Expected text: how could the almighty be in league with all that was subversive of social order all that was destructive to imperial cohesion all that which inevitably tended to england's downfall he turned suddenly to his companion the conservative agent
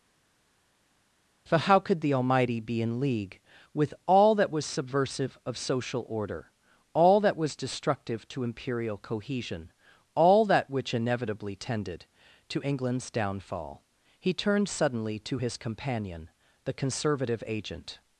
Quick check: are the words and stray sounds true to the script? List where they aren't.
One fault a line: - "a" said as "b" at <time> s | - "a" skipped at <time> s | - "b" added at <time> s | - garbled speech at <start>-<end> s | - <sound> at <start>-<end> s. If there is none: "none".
- "for" added at 1.5 s